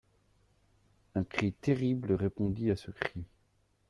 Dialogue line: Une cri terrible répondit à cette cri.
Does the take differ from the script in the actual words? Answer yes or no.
yes